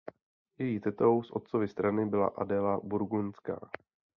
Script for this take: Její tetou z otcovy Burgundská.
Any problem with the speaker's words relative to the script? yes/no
yes